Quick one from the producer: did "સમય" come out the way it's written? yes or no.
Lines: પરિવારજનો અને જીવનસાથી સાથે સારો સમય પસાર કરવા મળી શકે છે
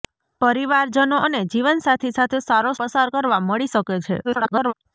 no